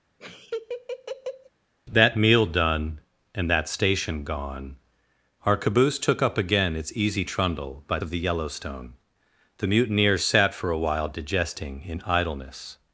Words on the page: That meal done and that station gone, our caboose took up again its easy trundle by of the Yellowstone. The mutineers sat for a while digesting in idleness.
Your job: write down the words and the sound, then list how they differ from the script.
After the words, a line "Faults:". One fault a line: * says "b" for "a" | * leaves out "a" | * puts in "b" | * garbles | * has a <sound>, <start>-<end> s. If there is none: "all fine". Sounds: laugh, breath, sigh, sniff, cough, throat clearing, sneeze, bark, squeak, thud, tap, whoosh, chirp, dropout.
That meal done and that station gone, our caboose took up again its easy trundle by of the Yellowstone. The mutineers sat for a while digesting in idleness.
Faults:
* has a laugh, 0.2-1.5 s